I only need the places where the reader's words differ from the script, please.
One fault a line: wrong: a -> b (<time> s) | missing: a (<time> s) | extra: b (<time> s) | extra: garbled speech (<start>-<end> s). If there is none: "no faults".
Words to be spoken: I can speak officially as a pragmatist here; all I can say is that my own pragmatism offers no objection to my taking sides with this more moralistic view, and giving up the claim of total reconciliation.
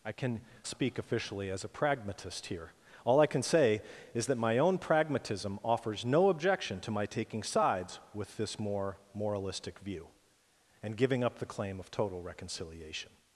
no faults